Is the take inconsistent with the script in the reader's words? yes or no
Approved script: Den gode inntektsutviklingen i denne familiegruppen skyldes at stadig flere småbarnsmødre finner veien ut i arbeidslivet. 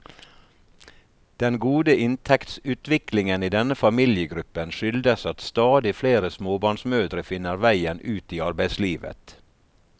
no